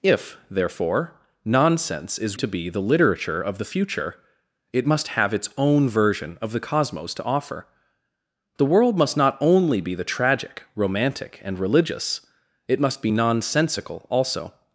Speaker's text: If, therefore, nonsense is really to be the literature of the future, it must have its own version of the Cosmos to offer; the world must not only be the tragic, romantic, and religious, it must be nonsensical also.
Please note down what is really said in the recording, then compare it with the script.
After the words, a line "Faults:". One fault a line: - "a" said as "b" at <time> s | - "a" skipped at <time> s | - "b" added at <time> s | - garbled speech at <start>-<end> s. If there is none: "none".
If, therefore, nonsense is to be the literature of the future, it must have its own version of the Cosmos to offer; the world must not only be the tragic, romantic, and religious, it must be nonsensical also.
Faults:
- "really" skipped at 2.4 s